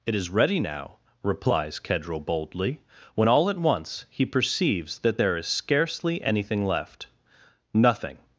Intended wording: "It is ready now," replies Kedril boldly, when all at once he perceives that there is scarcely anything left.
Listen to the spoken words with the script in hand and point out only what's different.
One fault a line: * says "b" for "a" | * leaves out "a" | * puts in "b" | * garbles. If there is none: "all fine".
* puts in "Nothing"